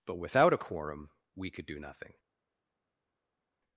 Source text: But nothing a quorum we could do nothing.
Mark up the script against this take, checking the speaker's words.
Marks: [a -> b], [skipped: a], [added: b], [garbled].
But [nothing -> without] a quorum we could do nothing.